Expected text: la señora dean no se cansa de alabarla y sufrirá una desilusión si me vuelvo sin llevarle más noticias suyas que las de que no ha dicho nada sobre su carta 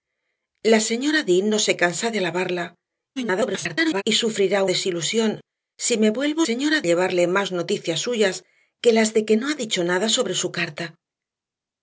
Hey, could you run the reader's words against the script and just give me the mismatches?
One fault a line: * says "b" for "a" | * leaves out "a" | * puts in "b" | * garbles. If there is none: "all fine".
* garbles
* leaves out "una"
* says "señora" for "sin"